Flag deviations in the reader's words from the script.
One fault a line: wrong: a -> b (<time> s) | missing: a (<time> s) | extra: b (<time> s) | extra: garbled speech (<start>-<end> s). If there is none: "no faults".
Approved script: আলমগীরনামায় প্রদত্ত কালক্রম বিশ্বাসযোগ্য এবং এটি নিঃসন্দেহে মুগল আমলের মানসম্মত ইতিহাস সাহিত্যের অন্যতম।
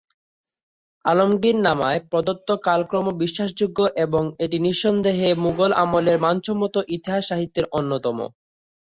no faults